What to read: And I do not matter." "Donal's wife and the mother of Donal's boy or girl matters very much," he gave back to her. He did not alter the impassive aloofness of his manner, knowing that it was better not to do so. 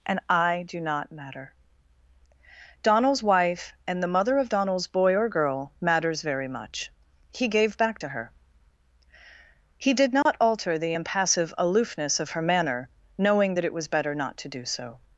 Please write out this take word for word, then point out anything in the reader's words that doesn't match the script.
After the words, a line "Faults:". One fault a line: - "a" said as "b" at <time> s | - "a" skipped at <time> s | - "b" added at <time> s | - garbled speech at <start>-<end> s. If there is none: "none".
And I do not matter." "Donal's wife and the mother of Donal's boy or girl matters very much," he gave back to her. He did not alter the impassive aloofness of her manner, knowing that it was better not to do so.
Faults:
- "his" said as "her" at 12.3 s